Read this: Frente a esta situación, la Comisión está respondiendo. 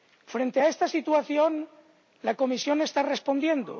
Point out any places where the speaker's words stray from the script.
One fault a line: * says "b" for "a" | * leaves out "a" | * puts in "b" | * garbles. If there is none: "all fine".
all fine